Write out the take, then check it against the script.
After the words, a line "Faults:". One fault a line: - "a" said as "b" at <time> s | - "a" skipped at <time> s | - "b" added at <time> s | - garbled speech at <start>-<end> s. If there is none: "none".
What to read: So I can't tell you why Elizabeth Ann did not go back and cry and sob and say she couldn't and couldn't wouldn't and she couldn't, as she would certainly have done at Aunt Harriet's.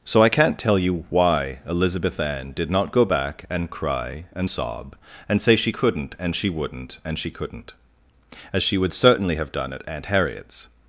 So I can't tell you why Elizabeth Ann did not go back and cry and sob and say she couldn't and she wouldn't and she couldn't, as she would certainly have done at Aunt Harriet's.
Faults:
- "couldn't" said as "she" at 6.3 s